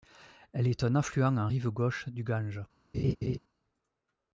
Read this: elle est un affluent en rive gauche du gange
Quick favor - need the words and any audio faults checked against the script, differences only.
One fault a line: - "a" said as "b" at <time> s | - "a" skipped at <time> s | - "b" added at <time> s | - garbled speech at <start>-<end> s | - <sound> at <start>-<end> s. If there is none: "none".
- laugh at 2.9-3.4 s